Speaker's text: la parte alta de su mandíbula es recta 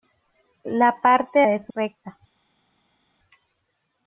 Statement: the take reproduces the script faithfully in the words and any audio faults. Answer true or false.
false